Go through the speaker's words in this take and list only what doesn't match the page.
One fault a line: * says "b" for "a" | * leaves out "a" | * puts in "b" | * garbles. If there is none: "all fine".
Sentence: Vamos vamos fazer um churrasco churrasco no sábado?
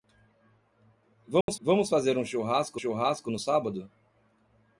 all fine